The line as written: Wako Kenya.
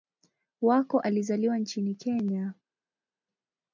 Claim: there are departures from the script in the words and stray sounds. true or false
true